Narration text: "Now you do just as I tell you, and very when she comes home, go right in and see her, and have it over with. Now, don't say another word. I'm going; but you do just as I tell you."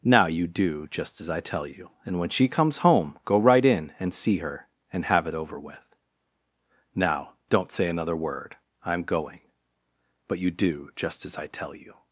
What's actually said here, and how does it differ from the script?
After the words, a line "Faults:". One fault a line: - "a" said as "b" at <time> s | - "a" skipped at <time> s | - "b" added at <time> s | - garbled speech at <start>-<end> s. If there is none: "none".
"Now you do just as I tell you, and when she comes home, go right in and see her, and have it over with. Now, don't say another word. I'm going; but you do just as I tell you."
Faults:
- "very" skipped at 2.2 s